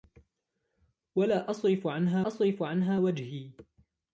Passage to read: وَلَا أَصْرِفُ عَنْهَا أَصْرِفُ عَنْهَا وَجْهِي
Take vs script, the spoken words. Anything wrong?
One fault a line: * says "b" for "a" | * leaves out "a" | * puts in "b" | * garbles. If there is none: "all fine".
all fine